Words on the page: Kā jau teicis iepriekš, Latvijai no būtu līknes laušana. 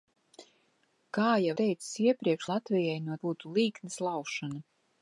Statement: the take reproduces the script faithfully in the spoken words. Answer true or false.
true